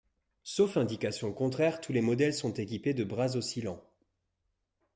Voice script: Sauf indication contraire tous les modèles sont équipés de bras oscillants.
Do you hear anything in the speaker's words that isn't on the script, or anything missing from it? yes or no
no